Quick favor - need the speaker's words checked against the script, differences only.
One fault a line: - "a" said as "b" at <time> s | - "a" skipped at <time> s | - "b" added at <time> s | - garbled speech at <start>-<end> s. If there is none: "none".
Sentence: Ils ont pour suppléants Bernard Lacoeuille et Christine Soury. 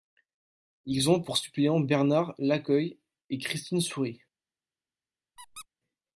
none